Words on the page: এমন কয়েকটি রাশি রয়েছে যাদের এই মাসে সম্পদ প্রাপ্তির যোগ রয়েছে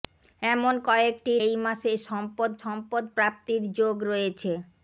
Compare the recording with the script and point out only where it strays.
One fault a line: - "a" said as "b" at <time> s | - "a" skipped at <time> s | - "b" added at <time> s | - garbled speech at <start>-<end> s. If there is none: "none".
- "রাশি রয়েছে যাদের" skipped at 1.3 s
- "সম্পদ" added at 2.6 s